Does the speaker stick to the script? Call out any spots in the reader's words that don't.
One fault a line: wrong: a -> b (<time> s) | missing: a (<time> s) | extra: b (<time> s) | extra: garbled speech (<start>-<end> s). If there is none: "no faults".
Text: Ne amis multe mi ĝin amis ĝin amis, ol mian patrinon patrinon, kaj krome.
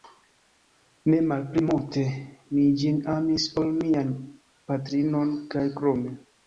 wrong: amis -> malpli (1.3 s)
missing: ĝin amis (3.5 s)
missing: patrinon (5.4 s)